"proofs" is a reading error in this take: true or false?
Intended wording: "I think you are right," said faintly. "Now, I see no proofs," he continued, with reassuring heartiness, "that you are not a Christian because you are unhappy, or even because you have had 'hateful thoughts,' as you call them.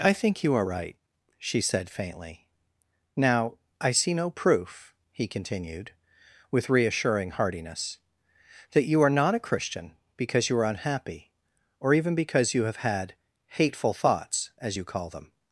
true